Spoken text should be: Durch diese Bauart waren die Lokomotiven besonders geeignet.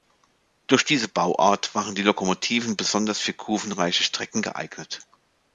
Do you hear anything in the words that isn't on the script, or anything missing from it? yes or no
yes